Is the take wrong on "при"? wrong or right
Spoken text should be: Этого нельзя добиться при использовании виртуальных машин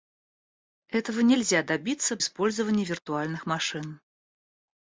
wrong